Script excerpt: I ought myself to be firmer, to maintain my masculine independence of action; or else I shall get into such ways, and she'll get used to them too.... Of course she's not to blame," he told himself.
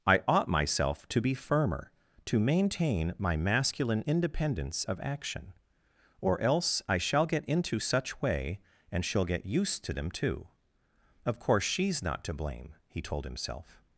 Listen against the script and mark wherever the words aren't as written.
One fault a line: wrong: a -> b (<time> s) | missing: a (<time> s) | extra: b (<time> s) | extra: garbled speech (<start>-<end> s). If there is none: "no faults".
wrong: ways -> way (8.2 s)